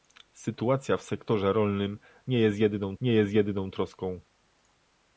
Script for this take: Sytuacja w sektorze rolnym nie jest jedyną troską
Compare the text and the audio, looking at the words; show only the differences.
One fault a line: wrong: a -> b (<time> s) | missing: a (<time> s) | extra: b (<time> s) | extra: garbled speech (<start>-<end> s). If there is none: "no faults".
extra: nie jest jedyną (3.0 s)